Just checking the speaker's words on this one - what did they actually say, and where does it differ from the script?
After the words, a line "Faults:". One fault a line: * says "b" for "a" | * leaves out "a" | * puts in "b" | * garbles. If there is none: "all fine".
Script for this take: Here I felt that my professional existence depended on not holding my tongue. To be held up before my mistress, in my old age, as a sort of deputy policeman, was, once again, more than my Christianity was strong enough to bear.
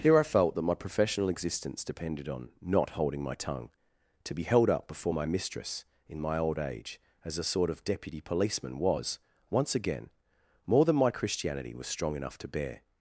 Here I felt that my professional existence depended on not holding my tongue. To be held up before my mistress, in my old age, as a sort of deputy policeman, was, once again, more than my Christianity was strong enough to bear.
Faults:
all fine